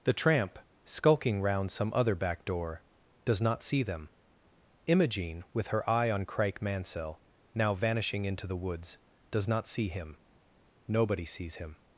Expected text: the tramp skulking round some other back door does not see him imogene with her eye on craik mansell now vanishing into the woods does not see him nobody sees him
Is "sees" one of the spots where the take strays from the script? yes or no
no